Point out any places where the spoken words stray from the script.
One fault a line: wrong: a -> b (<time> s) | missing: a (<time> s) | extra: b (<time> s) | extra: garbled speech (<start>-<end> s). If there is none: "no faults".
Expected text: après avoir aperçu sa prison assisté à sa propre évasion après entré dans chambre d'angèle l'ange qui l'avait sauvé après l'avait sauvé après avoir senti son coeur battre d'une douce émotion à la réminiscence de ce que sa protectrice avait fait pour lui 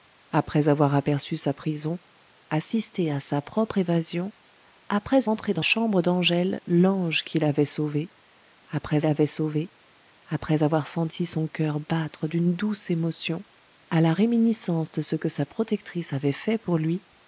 no faults